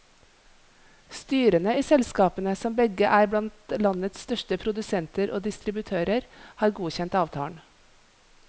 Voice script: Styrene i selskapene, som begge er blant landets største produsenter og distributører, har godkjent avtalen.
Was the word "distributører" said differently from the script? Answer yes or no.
no